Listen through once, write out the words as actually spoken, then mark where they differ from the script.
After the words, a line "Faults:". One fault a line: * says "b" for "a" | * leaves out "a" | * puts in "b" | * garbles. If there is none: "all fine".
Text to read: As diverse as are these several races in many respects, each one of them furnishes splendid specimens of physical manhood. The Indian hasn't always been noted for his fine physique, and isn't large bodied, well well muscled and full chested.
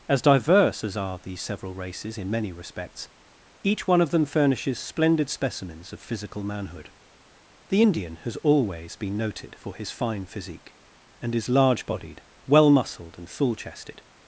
As diverse as are these several races in many respects, each one of them furnishes splendid specimens of physical manhood. The Indian has always been noted for his fine physique, and is large bodied, well muscled and full chested.
Faults:
* says "has" for "hasn't"
* says "is" for "isn't"
* leaves out "well"